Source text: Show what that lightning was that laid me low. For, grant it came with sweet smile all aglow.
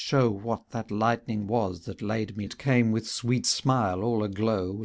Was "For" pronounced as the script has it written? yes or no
no